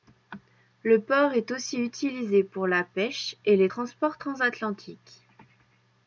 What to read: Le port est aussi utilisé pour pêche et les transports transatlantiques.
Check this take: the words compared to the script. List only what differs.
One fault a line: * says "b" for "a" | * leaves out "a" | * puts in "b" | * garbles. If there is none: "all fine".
* puts in "la"